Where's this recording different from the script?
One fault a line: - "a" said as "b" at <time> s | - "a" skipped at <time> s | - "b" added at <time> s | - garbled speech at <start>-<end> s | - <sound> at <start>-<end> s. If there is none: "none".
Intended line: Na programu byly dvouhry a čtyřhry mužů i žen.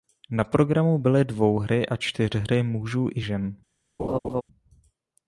- laugh at 4.0-4.4 s